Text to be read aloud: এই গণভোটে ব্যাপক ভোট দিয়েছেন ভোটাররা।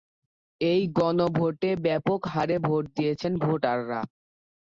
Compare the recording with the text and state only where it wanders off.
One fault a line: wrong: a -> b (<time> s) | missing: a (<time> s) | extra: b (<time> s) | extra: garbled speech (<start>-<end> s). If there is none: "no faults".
extra: হারে (2.3 s)